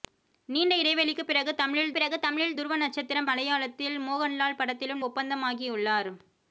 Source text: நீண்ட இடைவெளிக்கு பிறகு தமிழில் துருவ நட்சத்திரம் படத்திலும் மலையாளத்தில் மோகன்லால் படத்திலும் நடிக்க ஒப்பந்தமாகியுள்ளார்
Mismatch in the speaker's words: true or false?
true